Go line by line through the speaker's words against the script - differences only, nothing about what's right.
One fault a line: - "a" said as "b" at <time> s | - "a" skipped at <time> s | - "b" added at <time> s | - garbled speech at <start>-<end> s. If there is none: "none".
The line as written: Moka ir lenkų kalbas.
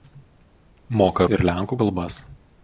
none